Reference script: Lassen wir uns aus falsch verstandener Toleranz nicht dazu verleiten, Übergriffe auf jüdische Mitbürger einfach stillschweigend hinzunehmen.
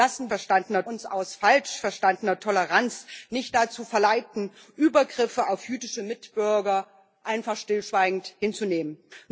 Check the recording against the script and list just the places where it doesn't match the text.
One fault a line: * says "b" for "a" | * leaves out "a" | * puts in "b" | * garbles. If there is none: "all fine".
* says "verstandener" for "wir"